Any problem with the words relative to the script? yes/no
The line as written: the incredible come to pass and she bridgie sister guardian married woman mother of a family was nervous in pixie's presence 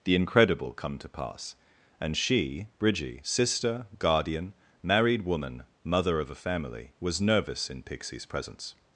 no